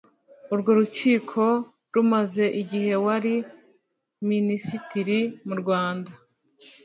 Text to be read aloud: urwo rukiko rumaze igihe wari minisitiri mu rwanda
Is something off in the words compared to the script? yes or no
no